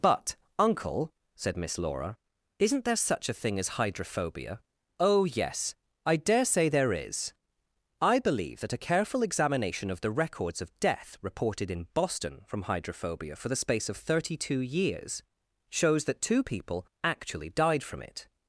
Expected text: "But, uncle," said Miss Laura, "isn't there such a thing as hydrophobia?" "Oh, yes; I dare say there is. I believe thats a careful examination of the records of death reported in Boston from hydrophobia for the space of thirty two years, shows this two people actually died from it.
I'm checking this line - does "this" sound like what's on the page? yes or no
no